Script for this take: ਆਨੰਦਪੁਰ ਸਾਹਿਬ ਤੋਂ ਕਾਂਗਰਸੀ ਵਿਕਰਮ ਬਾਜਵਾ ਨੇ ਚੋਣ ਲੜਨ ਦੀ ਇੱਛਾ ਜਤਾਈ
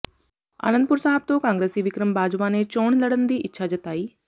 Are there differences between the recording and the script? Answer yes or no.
no